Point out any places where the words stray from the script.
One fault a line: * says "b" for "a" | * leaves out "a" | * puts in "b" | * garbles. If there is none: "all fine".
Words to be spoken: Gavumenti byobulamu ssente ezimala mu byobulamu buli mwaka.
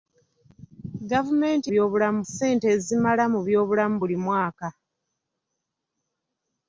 all fine